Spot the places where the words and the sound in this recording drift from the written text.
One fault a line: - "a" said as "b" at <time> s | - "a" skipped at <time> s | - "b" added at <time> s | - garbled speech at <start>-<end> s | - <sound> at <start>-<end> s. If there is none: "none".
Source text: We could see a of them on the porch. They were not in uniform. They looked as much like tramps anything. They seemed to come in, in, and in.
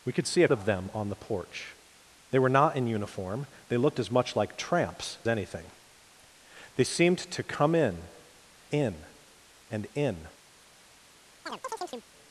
- chirp at 11.5-12.1 s